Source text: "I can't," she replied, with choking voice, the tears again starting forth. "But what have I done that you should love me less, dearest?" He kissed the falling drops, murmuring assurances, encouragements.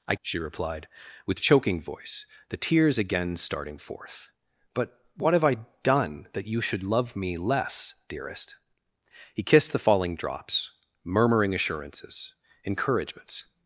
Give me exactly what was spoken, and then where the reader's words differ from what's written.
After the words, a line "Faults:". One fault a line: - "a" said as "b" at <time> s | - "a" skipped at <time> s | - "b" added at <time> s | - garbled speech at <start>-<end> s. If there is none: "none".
"I," she replied, with choking voice, the tears again starting forth. "But what have I done that you should love me less, dearest?" He kissed the falling drops, murmuring assurances, encouragements.
Faults:
- "can't" skipped at 0.1 s